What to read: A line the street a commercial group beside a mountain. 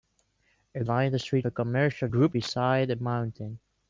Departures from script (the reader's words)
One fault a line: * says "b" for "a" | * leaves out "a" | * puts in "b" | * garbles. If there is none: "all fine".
all fine